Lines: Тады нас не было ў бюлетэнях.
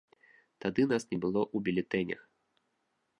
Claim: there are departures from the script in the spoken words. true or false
false